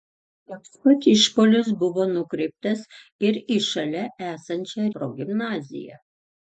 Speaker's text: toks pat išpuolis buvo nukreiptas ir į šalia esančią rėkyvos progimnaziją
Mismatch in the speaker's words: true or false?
true